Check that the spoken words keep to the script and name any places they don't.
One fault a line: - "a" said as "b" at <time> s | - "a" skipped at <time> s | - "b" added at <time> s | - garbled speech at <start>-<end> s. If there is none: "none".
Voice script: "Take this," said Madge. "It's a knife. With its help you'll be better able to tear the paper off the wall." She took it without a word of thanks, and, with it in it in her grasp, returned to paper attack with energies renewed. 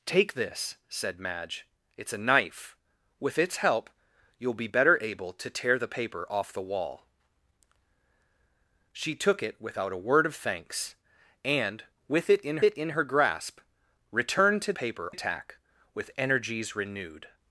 none